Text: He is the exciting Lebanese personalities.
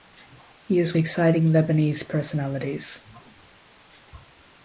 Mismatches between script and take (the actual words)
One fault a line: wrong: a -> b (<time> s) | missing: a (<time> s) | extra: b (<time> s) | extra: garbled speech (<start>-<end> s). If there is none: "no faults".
no faults